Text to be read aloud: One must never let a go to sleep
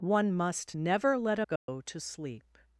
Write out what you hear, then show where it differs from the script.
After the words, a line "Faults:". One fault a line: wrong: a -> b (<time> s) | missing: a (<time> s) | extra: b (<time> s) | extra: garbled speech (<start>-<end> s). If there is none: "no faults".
One must never let a go to sleep
Faults:
no faults